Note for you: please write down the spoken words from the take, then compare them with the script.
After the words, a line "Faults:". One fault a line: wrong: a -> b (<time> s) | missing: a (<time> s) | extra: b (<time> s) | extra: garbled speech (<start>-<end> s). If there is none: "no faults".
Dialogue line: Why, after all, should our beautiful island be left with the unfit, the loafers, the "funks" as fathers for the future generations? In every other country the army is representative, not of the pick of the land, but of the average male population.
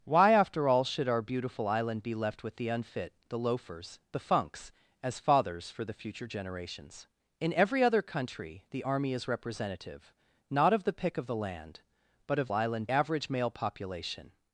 Why, after all, should our beautiful island be left with the unfit, the loafers, the "funks" as fathers for the future generations? In every other country the army is representative, not of the pick of the land, but of island average male population.
Faults:
wrong: the -> island (12.5 s)